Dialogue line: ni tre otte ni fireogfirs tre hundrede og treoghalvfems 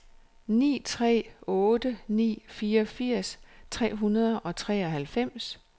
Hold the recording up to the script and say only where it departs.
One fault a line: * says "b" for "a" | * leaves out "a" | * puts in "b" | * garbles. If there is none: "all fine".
all fine